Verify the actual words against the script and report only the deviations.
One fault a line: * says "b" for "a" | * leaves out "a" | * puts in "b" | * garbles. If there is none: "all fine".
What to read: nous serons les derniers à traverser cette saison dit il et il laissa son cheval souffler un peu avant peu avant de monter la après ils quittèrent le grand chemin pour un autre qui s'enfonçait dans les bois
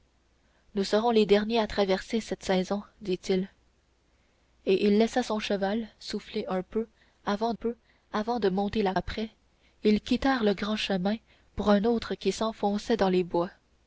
all fine